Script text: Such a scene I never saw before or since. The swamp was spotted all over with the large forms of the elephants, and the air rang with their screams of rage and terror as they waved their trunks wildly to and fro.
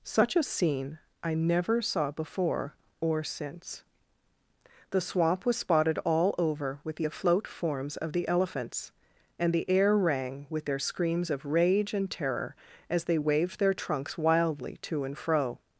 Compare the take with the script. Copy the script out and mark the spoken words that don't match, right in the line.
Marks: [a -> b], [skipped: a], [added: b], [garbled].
Such a scene I never saw before or since. The swamp was spotted all over with the [large -> afloat] forms of the elephants, and the air rang with their screams of rage and terror as they waved their trunks wildly to and fro.